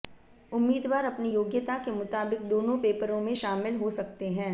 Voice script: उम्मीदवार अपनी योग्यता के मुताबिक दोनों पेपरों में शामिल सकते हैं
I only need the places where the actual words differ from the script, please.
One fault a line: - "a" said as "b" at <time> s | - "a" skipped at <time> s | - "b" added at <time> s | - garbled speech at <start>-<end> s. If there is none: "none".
- "हो" added at 3.8 s